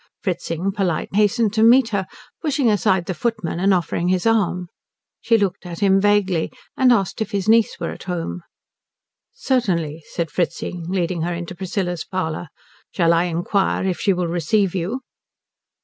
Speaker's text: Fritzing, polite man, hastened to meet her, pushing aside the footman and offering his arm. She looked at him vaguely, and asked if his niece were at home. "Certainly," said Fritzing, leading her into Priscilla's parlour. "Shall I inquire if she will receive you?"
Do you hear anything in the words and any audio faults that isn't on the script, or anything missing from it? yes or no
yes